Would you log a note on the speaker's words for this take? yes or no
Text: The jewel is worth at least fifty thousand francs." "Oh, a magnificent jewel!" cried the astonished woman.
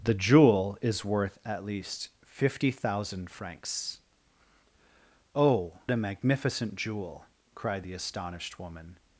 no